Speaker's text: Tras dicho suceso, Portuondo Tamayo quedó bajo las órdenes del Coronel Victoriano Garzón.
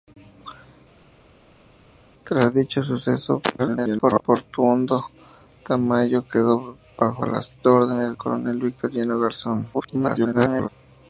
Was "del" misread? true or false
true